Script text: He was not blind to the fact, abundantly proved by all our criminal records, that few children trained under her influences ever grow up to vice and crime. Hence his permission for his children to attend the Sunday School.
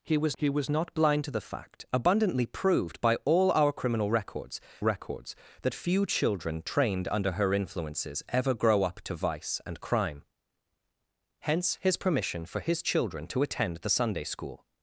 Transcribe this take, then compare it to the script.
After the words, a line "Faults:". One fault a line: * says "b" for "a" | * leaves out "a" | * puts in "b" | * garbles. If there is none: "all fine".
He was he was not blind to the fact, abundantly proved by all our criminal records records, that few children trained under her influences ever grow up to vice and crime. Hence his permission for his children to attend the Sunday School.
Faults:
* puts in "he was"
* puts in "records"